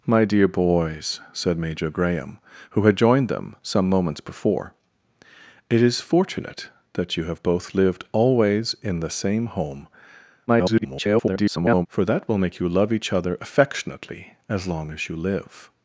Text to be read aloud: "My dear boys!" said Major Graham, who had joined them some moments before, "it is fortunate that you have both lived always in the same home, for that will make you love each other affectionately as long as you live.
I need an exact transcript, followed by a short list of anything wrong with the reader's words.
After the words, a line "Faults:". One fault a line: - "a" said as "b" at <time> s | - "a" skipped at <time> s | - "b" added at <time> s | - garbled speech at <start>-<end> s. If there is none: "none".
"My dear boys!" said Major Graham, who had joined them some moments before, "it is fortunate that you have both lived always in the same home, [garbled] for that will make you love each other affectionately as long as you live.
Faults:
- garbled speech at 10.5-11.9 s